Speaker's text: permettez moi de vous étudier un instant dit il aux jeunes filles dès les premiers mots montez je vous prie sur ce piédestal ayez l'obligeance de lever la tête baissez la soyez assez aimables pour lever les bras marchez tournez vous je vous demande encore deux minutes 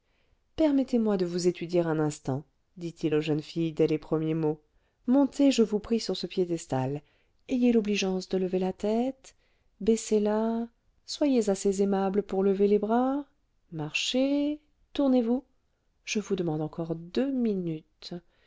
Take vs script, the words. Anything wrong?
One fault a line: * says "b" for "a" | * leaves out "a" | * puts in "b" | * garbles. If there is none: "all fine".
all fine